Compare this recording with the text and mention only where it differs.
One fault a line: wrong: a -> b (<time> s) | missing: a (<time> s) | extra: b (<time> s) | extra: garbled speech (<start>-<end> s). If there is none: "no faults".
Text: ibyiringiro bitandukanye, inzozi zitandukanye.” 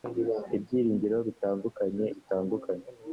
missing: inzozi (2.0 s)